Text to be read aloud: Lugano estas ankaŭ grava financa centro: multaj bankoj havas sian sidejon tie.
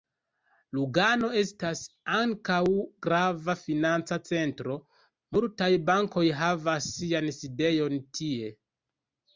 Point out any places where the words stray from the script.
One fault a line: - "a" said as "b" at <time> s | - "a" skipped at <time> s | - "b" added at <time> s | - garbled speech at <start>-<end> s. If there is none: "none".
none